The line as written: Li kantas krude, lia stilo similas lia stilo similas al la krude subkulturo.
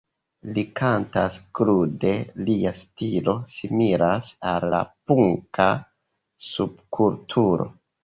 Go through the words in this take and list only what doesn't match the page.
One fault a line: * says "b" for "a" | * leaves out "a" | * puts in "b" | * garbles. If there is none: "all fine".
* leaves out "lia stilo similas"
* says "punka" for "krude"